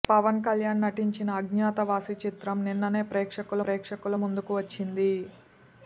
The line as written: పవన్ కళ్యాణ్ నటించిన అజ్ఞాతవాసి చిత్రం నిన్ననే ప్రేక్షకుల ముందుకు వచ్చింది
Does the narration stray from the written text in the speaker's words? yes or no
yes